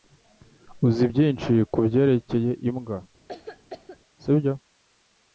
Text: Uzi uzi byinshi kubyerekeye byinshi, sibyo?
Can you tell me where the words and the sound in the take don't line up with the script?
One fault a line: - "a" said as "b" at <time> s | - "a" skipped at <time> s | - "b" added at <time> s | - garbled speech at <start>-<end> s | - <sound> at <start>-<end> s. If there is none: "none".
- "uzi" skipped at 1.1 s
- "byinshi" said as "imbwa" at 2.7 s
- cough at 3.3-4.0 s